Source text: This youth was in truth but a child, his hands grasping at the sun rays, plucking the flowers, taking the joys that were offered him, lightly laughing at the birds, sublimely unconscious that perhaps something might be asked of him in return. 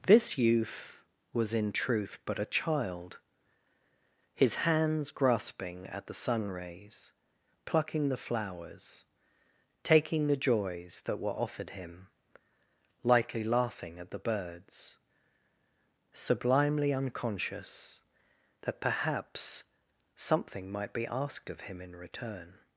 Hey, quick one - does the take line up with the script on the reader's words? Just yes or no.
yes